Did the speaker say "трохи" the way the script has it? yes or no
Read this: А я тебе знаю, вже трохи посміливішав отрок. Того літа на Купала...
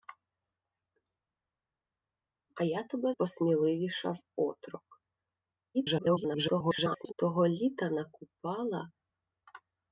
no